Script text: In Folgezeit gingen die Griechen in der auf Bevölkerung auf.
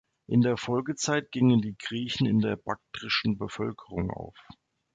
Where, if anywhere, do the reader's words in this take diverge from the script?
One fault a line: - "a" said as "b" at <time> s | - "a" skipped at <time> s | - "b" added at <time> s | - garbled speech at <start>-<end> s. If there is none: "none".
- "der" added at 0.4 s
- "auf" said as "baktrischen" at 2.5 s